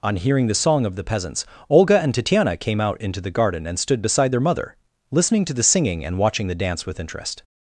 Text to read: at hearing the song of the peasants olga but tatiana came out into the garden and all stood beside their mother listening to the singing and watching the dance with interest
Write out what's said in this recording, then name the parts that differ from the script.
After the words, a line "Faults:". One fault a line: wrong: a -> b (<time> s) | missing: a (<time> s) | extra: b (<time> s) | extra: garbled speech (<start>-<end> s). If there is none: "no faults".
on hearing the song of the peasants olga and tatiana came out into the garden and stood beside their mother listening to the singing and watching the dance with interest
Faults:
wrong: at -> on (0.0 s)
wrong: but -> and (2.0 s)
missing: all (3.8 s)